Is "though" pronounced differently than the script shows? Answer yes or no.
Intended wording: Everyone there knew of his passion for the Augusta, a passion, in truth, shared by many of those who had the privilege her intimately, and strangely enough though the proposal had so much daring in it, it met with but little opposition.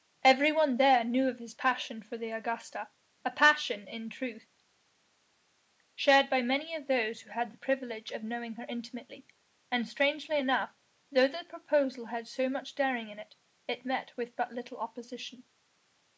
no